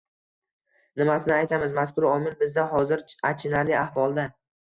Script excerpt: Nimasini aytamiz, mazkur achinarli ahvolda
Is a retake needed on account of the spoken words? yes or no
yes